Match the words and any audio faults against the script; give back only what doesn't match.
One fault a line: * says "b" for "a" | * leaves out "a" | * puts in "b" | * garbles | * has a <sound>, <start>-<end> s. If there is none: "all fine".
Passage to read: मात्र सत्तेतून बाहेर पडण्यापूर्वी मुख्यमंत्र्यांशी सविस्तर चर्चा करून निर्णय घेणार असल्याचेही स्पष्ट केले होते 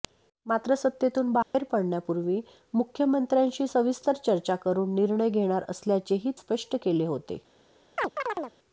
* has a dropout, 1.4-1.5 s
* has a chirp, 8.0-8.5 s